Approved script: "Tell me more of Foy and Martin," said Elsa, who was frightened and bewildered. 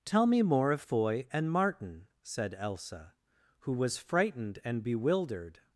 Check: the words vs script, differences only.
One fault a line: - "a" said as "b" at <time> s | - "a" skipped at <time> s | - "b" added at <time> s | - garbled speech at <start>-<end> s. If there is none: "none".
none